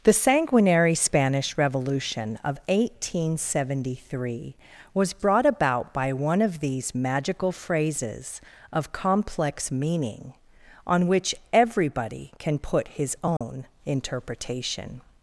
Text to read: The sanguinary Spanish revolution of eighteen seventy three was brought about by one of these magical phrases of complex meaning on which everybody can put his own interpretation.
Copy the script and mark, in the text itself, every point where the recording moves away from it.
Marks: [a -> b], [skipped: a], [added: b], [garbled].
The sanguinary Spanish revolution of eighteen seventy three was brought about by one of these magical phrases of complex meaning on which everybody can put his own interpretation.